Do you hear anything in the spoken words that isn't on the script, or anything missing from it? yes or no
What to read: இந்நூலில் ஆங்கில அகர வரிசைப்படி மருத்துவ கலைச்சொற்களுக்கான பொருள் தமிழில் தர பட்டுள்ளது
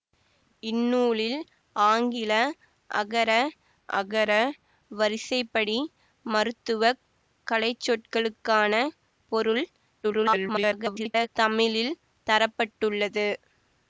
yes